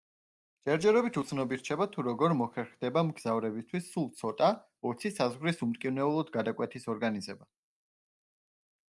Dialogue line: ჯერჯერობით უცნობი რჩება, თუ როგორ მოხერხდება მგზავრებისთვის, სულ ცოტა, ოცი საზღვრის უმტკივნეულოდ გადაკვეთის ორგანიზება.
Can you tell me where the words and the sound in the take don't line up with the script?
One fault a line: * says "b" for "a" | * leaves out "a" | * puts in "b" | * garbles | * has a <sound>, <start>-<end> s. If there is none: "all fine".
all fine